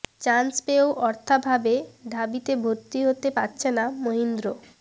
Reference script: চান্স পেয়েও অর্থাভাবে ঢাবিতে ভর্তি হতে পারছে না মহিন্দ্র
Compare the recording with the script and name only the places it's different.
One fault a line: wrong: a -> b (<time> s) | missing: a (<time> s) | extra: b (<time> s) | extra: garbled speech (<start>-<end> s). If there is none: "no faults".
no faults